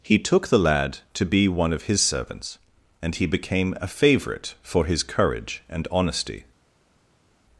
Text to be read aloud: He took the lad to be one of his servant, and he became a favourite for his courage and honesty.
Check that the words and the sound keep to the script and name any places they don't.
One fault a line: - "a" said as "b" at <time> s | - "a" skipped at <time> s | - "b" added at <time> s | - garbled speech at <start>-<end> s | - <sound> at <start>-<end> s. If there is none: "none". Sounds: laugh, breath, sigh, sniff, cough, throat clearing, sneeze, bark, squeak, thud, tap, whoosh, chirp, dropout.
- "servant" said as "servants" at 2.0 s